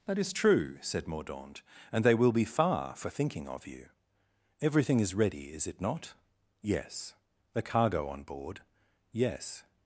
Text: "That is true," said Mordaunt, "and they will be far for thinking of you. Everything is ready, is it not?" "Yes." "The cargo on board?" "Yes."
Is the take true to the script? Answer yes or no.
yes